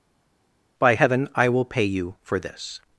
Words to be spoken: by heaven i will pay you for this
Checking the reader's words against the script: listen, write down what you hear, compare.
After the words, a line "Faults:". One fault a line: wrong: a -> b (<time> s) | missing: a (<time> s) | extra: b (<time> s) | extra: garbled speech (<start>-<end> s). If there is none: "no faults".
by heaven i will pay you for this
Faults:
no faults